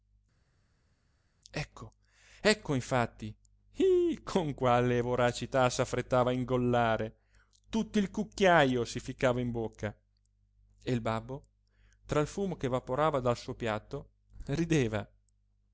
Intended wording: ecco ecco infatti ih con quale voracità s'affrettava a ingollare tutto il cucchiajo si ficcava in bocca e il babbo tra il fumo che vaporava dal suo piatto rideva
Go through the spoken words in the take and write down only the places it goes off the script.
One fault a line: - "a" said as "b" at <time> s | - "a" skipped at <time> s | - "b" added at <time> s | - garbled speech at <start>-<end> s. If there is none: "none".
none